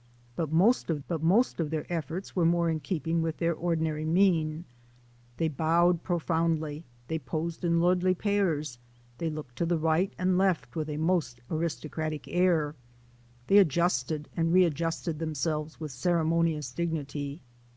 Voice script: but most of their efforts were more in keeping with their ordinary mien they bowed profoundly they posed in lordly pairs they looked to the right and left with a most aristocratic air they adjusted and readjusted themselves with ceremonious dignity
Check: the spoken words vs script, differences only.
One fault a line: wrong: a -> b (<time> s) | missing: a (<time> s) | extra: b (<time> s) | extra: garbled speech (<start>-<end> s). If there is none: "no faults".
extra: but most of (1.1 s)